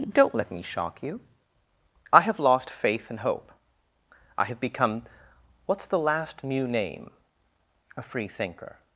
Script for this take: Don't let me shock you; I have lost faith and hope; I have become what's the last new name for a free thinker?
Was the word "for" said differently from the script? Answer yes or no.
yes